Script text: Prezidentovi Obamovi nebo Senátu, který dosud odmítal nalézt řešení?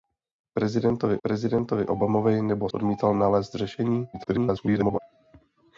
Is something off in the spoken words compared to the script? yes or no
yes